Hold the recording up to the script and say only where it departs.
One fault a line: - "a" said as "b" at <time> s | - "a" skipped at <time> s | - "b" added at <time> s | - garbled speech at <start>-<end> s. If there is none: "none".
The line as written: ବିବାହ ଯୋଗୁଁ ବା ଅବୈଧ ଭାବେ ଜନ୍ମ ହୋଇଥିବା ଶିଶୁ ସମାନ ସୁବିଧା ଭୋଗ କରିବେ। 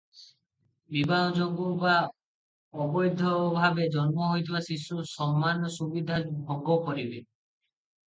none